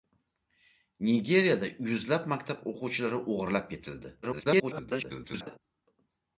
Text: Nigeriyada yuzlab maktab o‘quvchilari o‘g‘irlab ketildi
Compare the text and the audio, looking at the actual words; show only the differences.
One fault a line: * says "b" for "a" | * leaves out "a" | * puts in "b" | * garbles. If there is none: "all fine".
* garbles